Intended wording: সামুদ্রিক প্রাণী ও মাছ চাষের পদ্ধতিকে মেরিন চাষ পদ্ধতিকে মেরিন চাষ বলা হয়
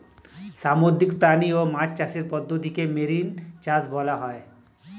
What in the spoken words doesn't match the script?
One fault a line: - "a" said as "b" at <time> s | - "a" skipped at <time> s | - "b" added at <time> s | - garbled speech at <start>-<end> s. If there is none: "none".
- "পদ্ধতিকে মেরিন চাষ" skipped at 3.8 s